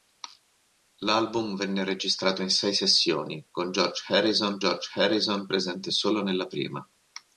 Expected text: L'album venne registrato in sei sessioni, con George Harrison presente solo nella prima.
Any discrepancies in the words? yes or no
yes